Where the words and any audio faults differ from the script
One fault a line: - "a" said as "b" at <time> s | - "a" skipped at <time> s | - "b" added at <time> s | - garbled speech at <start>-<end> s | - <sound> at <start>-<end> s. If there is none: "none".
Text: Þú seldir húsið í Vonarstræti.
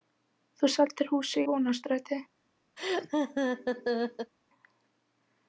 - "í" skipped at 1.4 s
- laugh at 2.8-4.3 s